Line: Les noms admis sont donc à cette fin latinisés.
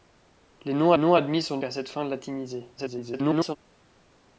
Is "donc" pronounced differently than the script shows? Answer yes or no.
yes